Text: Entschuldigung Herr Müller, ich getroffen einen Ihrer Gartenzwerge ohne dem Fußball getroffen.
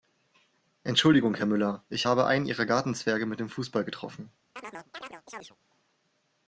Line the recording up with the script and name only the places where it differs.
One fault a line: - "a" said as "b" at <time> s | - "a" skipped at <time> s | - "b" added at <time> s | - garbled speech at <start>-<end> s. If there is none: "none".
- "getroffen" said as "habe" at 2.1 s
- "ohne" said as "mit" at 3.3 s